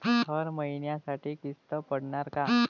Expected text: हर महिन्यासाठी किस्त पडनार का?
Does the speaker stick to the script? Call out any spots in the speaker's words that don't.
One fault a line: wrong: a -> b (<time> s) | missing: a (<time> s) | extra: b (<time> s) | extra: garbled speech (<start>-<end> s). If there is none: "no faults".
no faults